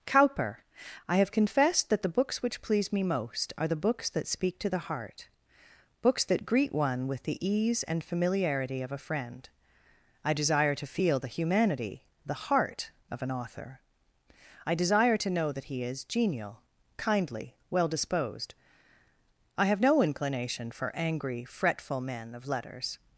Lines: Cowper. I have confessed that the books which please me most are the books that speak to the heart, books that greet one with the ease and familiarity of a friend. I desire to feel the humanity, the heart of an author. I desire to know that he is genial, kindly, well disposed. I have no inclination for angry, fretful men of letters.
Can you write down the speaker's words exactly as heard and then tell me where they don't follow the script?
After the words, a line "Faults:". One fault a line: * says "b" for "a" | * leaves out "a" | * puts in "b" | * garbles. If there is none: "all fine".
Cowper. I have confessed that the books which please me most are the books that speak to the heart, books that greet one with the ease and familiarity of a friend. I desire to feel the humanity, the heart of an author. I desire to know that he is genial, kindly, well disposed. I have no inclination for angry, fretful men of letters.
Faults:
all fine